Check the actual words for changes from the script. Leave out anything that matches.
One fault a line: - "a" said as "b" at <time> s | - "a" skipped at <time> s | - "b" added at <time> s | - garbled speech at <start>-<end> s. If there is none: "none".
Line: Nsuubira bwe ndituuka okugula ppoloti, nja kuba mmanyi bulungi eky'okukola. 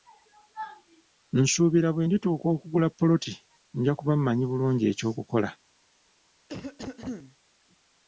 none